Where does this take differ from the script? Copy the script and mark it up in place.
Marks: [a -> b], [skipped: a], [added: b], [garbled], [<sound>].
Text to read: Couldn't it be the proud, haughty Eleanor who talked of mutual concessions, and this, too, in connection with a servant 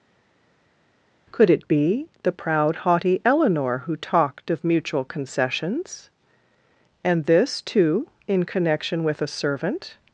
[Couldn't -> Could] it be the proud, haughty Eleanor who talked of mutual concessions, and this, too, in connection with a servant